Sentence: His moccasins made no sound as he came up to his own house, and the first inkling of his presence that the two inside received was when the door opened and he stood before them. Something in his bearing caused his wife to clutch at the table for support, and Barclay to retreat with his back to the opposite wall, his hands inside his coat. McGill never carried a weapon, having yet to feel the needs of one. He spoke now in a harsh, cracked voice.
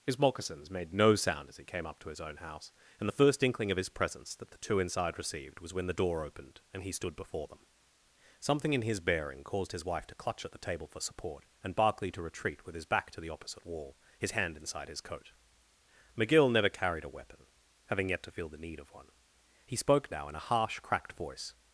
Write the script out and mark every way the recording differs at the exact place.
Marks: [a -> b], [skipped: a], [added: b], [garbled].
His moccasins made no sound as he came up to his own house, and the first inkling of his presence that the two inside received was when the door opened and he stood before them. Something in his bearing caused his wife to clutch at the table for support, and Barclay to retreat with his back to the opposite wall, his [hands -> hand] inside his coat. McGill never carried a weapon, having yet to feel the [needs -> need] of one. He spoke now in a harsh, cracked voice.